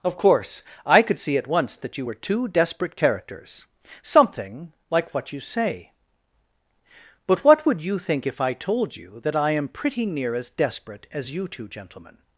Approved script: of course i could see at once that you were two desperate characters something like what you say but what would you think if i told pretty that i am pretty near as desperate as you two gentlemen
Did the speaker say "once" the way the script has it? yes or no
yes